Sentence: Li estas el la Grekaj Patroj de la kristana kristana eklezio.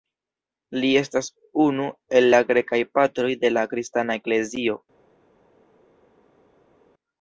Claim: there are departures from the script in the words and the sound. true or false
true